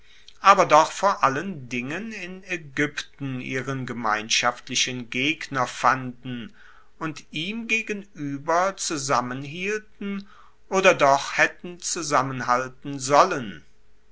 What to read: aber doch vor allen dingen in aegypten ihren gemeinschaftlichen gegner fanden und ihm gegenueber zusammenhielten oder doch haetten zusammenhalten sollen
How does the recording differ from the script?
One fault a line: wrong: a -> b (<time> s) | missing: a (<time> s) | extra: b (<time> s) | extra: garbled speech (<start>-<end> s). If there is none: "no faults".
no faults